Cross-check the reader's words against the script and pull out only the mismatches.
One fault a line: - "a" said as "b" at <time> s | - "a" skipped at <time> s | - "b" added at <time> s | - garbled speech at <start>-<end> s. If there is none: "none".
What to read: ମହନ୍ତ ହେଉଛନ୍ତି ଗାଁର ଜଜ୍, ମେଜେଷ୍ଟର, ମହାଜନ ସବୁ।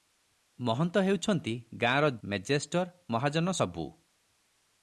- "ଜଜ୍" skipped at 2.1 s